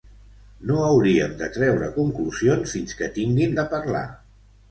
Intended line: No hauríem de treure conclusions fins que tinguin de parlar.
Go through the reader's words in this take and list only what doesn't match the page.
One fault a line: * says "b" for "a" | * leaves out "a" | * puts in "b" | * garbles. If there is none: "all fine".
all fine